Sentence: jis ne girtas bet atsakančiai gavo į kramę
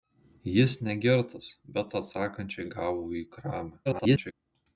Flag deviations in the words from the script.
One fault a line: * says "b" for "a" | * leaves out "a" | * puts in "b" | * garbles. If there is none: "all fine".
* garbles